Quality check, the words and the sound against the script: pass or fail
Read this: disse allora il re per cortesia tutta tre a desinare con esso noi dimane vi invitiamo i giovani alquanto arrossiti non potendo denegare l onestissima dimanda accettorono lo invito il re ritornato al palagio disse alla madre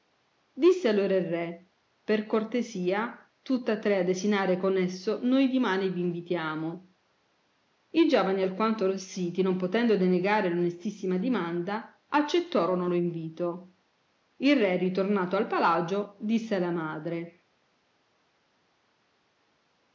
pass